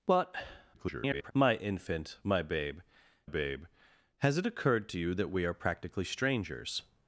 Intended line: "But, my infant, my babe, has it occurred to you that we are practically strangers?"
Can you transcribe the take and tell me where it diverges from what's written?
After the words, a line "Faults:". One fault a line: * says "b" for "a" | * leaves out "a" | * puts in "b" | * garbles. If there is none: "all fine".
"But, [garbled] my infant, my babe babe, has it occurred to you that we are practically strangers?"
Faults:
* garbles
* puts in "babe"